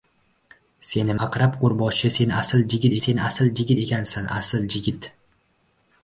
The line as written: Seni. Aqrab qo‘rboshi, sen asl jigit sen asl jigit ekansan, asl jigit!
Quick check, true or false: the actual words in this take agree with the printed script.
true